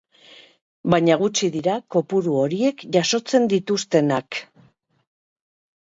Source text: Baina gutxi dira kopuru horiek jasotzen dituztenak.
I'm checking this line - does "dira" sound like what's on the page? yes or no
yes